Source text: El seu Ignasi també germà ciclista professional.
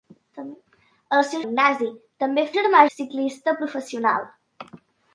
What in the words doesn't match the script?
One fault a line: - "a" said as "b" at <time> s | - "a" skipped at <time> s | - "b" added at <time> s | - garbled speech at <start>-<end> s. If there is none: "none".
none